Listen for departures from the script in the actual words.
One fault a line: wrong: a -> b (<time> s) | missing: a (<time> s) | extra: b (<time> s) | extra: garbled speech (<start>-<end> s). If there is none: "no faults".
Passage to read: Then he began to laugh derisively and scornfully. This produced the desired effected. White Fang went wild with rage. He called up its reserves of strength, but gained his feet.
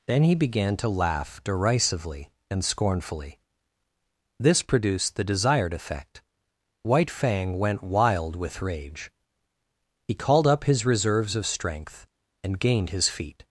wrong: effected -> effect (5.7 s)
wrong: its -> his (10.6 s)
wrong: but -> and (12.4 s)